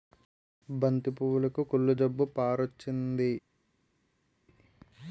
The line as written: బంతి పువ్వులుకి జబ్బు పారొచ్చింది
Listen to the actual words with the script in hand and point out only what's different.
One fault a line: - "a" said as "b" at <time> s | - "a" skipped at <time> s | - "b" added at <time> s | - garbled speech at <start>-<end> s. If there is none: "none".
- "కుళ్ళు" added at 1.7 s